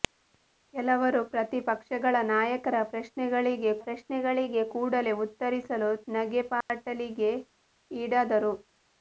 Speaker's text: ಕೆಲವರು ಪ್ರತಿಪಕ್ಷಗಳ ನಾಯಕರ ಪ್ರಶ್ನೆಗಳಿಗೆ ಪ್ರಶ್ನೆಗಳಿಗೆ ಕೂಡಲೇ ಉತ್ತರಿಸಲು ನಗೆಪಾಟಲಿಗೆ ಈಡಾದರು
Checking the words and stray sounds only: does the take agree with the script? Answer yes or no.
no